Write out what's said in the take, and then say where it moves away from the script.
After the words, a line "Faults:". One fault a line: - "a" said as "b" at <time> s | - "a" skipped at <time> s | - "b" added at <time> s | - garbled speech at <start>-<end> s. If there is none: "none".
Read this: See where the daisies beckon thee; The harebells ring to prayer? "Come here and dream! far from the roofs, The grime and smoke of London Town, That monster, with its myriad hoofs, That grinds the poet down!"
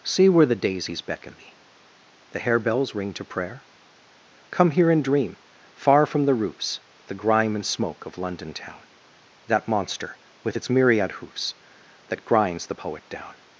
See where the daisies beckon thee; The harebells ring to prayer? "Come here and dream! far from the roofs, The grime and smoke of London Town, That monster, with its myriad hoofs, That grinds the poet down!"
Faults:
none